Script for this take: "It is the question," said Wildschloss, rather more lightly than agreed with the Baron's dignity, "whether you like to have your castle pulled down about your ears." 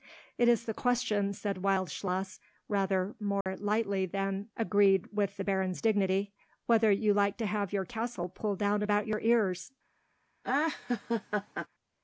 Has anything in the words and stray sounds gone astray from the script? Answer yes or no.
yes